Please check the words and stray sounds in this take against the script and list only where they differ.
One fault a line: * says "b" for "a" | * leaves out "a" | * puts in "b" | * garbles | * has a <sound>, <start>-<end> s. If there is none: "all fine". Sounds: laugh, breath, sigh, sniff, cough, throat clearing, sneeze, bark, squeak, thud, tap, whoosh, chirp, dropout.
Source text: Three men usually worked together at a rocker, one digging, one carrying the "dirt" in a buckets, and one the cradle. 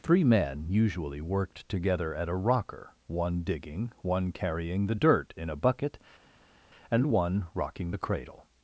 * says "bucket" for "buckets"
* puts in "rocking"